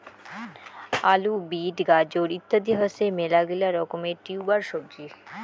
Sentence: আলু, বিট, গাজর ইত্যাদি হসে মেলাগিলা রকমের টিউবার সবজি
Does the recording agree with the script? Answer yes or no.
yes